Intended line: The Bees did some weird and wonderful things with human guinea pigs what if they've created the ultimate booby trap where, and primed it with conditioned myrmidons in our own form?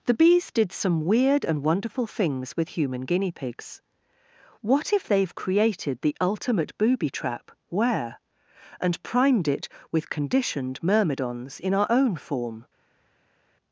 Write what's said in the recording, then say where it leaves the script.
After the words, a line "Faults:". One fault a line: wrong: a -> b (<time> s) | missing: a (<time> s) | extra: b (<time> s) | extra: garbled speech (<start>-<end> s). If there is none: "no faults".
The Bees did some weird and wonderful things with human guinea pigs what if they've created the ultimate booby trap where, and primed it with conditioned myrmidons in our own form?
Faults:
no faults